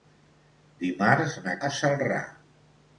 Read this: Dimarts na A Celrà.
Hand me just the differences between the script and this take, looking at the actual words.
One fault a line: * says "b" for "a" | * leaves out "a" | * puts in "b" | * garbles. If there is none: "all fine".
all fine